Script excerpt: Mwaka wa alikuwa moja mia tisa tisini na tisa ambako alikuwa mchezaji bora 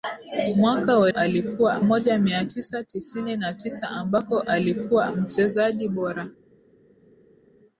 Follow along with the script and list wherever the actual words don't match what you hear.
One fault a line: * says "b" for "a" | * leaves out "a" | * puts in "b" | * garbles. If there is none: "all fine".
all fine